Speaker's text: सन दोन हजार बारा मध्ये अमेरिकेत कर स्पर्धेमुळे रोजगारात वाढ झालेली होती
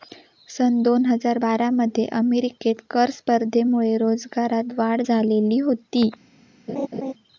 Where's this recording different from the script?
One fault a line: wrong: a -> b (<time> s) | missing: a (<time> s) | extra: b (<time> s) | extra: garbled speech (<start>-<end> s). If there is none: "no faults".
no faults